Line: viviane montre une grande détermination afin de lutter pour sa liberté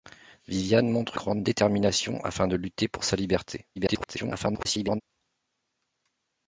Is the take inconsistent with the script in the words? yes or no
yes